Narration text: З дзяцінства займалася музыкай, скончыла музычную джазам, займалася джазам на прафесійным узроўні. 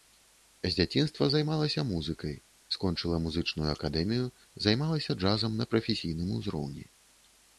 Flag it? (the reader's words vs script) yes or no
yes